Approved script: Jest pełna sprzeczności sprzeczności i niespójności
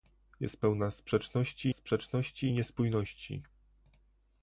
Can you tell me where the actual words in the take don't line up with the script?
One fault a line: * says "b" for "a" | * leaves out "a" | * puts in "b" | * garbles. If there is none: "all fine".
all fine